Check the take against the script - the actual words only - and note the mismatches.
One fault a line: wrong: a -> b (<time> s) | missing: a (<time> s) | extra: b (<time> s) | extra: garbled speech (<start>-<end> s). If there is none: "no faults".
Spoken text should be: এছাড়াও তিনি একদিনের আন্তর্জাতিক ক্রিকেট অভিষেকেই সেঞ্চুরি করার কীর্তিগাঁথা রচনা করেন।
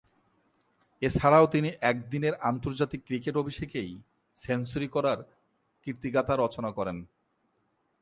no faults